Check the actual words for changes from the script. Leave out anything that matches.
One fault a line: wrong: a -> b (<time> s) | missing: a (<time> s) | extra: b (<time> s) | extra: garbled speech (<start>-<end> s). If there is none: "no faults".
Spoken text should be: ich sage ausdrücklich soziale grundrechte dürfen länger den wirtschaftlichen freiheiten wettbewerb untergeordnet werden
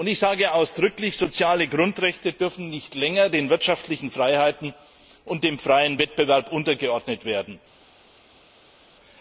extra: nicht (2.7 s)
extra: und dem freien (5.3 s)